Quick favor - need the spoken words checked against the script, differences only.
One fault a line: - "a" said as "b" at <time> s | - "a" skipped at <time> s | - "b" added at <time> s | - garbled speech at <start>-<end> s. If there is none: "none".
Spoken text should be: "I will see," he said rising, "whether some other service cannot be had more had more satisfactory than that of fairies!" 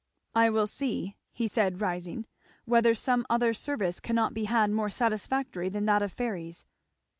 - "had more" skipped at 4.9 s